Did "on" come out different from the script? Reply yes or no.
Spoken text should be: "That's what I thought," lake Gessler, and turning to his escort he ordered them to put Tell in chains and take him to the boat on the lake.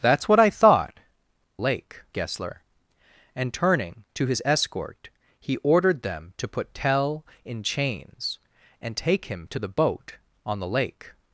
no